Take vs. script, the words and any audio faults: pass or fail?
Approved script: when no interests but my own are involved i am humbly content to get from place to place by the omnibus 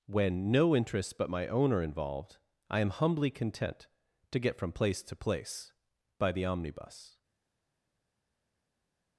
pass